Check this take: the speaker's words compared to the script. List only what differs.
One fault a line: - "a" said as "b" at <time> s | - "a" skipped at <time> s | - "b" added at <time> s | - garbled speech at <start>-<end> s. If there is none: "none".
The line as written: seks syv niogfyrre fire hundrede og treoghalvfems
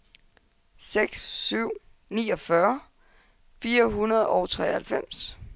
none